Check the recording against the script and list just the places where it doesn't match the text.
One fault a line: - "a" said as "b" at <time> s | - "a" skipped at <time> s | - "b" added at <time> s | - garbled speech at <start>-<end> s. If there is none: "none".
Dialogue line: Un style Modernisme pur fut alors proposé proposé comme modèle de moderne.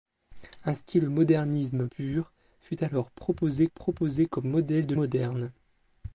none